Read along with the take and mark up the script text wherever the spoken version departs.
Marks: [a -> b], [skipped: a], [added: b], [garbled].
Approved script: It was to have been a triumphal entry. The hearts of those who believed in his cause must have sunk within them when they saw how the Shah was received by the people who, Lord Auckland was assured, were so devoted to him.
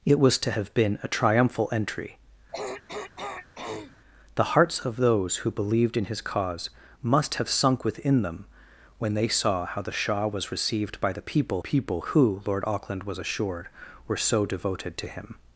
It was to have been a triumphal entry. The hearts of those who believed in his cause must have sunk within them when they saw how the Shah was received by the people [added: people] who, Lord Auckland was assured, were so devoted to him.